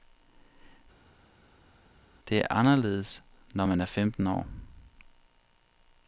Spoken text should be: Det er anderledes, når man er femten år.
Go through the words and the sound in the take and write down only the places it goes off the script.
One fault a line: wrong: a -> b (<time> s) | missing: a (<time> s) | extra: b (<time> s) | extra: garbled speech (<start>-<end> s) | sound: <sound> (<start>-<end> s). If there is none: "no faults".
no faults